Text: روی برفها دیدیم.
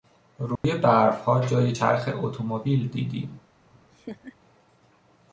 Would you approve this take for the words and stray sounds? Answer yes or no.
no